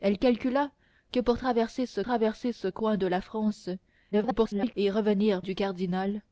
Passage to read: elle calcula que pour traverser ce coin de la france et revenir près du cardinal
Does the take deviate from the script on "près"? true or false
true